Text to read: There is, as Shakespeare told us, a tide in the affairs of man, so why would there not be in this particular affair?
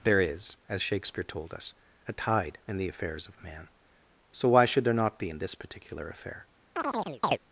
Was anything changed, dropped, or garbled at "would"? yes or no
yes